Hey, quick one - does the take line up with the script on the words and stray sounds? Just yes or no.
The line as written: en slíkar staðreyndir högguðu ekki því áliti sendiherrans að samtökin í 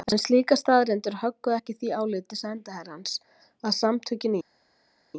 yes